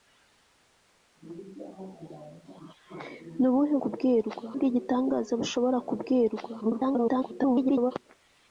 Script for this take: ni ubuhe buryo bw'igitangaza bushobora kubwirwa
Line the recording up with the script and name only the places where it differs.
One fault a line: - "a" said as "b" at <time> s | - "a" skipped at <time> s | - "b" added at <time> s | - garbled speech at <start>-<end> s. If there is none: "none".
- "buryo" said as "kubwirwa" at 3.8 s
- garbled speech at 6.6-7.9 s